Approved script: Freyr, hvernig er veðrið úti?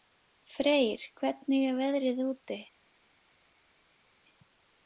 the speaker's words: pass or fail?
pass